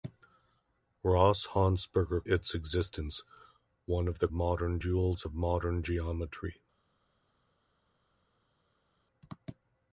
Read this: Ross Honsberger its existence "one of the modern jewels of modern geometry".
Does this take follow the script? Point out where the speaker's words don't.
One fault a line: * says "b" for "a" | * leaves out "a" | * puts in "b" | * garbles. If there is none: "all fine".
all fine